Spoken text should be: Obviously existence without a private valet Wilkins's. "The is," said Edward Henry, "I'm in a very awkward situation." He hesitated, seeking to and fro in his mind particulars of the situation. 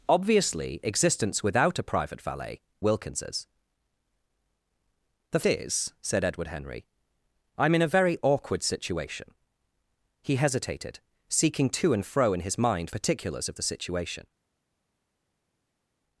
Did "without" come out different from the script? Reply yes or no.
no